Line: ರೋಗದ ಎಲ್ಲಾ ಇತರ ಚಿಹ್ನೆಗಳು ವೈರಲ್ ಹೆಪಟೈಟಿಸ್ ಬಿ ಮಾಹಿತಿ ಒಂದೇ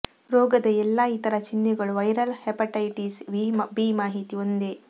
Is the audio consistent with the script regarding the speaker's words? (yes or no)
yes